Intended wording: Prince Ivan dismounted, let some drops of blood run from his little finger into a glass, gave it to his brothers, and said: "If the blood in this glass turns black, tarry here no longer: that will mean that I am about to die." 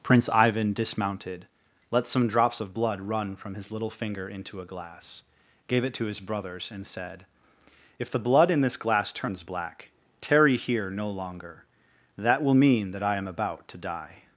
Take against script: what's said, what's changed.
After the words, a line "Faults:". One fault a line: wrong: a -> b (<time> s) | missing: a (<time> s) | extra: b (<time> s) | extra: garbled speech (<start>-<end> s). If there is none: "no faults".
Prince Ivan dismounted, let some drops of blood run from his little finger into a glass, gave it to his brothers, and said: "If the blood in this glass turns black, tarry here no longer: that will mean that I am about to die."
Faults:
no faults